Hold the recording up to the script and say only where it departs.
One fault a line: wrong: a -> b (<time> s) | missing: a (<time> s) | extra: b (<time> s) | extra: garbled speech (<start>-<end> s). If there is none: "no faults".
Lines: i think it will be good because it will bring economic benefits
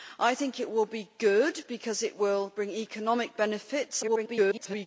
extra: garbled speech (4.0-4.9 s)